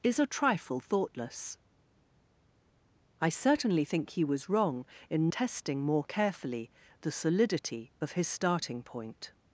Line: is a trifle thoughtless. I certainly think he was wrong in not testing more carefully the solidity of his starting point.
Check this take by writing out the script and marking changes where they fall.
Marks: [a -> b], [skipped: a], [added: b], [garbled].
is a trifle thoughtless. I certainly think he was wrong in [skipped: not] testing more carefully the solidity of his starting point.